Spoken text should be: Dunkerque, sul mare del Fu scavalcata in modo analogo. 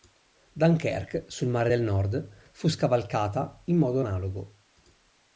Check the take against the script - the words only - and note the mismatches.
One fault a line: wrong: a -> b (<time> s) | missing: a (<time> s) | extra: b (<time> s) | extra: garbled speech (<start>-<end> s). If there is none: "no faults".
extra: Nord (1.8 s)